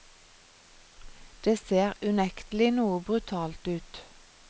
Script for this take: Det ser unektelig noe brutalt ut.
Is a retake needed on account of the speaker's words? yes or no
no